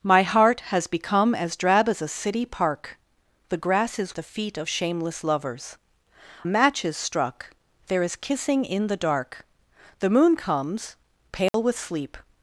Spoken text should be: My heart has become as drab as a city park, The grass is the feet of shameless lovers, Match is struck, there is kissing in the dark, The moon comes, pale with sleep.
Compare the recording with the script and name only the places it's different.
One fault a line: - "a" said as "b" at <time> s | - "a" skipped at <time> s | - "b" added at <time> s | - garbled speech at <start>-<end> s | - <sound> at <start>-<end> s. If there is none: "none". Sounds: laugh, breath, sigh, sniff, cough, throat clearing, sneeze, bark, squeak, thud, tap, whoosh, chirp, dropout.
- dropout at 11.5-11.5 s